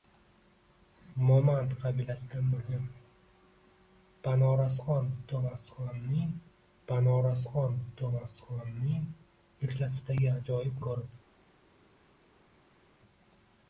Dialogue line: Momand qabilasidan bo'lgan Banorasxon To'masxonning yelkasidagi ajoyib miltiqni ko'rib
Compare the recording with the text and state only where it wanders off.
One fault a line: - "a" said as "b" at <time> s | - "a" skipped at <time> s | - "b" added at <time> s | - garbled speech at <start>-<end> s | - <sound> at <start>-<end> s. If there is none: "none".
- "Banorasxon To'masxonning" added at 6.9 s
- "miltiqni" skipped at 10.8 s